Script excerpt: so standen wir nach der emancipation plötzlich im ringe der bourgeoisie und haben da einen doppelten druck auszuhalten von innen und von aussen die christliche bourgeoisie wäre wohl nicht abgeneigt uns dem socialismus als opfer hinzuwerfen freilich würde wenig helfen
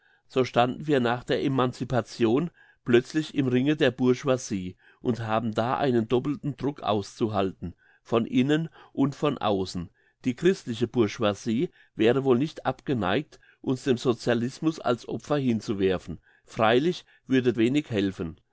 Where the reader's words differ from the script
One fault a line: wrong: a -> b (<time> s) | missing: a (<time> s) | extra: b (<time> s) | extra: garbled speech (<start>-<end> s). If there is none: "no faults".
no faults